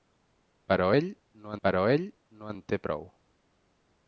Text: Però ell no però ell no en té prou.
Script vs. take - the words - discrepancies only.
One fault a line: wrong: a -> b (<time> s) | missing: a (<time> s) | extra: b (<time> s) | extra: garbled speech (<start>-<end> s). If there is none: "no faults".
no faults